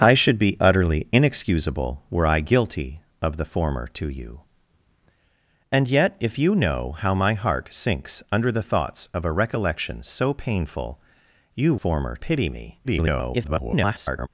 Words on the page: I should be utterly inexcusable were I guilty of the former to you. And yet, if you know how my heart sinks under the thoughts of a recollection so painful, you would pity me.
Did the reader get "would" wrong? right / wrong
wrong